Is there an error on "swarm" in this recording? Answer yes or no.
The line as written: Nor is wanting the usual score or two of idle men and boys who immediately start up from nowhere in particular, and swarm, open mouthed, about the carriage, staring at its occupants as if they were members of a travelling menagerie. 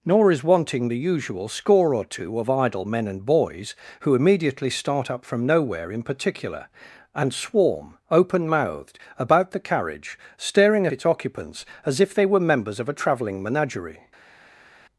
no